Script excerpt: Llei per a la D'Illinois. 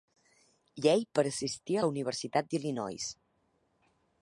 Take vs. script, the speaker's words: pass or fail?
fail